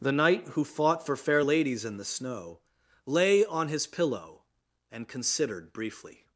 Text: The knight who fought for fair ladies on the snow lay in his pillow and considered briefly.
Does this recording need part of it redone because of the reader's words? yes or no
yes